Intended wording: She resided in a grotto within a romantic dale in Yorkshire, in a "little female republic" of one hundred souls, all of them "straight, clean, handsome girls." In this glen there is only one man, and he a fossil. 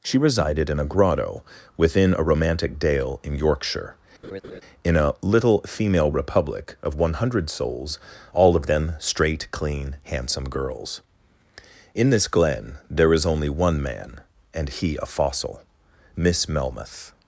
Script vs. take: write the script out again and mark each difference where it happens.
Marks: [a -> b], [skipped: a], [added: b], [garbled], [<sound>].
She resided in a grotto within a romantic dale in Yorkshire, [laugh] in a "little female republic" of one hundred souls, all of them "straight, clean, handsome girls." In this glen there is only one man, and he a fossil. [added: Miss Melmoth]